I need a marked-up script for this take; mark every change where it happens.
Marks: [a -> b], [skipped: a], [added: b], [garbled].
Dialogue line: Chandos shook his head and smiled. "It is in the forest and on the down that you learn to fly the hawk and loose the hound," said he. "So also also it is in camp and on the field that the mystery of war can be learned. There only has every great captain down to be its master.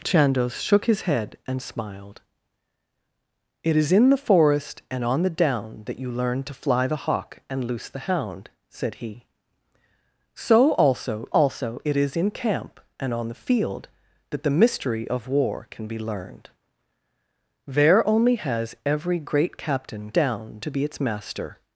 Chandos shook his head and smiled. "It is in the forest and on the down that you learn to fly the hawk and loose the hound," said he. "So also also it is in camp and on the field that the mystery of war can be learned. There only has every great captain down to be its master.